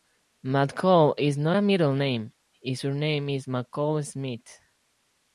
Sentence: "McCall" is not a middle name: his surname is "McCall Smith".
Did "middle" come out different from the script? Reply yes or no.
no